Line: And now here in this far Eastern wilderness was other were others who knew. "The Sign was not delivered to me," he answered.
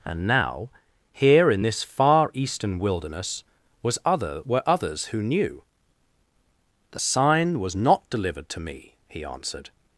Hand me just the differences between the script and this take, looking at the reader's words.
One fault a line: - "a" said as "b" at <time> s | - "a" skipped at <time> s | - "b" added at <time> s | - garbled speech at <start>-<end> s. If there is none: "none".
none